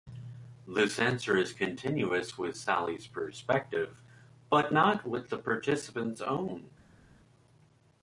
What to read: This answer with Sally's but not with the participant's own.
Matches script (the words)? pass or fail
fail